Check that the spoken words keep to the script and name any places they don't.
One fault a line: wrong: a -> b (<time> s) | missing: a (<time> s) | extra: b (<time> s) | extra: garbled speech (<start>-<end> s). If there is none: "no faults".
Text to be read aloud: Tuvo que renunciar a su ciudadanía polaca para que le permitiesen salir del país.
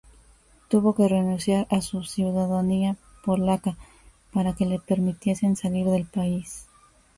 no faults